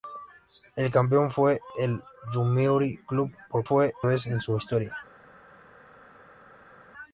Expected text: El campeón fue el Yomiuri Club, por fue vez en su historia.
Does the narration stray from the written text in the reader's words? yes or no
no